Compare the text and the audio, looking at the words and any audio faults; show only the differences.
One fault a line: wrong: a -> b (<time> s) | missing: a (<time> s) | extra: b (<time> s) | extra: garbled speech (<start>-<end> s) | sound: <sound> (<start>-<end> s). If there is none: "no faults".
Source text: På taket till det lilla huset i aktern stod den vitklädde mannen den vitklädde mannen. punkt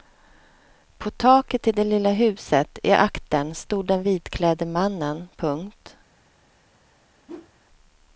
missing: den vitklädde mannen (5.3 s)
sound: whoosh (7.3-7.5 s)